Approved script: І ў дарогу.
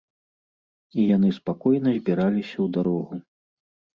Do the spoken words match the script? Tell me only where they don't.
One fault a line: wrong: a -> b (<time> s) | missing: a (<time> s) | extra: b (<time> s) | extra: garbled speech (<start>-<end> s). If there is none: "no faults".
extra: яны спакойна збіраліся (1.1 s)